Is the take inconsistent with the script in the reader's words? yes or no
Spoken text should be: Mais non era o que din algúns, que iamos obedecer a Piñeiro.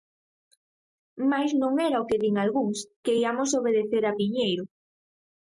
no